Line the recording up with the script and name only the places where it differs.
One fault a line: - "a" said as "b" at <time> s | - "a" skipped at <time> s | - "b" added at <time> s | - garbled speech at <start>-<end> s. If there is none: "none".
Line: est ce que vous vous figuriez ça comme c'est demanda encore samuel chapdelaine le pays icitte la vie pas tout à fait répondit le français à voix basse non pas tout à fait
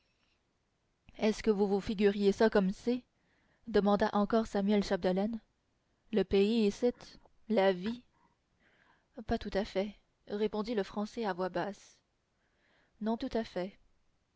- "pas" skipped at 13.2 s